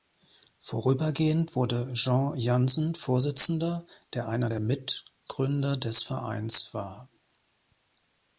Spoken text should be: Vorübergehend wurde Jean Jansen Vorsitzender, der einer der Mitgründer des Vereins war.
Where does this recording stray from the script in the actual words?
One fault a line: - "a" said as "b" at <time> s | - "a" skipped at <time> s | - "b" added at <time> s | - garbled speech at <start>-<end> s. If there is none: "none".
none